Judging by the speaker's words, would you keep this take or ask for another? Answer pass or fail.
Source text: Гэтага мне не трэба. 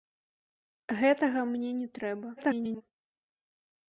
fail